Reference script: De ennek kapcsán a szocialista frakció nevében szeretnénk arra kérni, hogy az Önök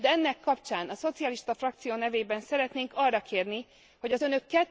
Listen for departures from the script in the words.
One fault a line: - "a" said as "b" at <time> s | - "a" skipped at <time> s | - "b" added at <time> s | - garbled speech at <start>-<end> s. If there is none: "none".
none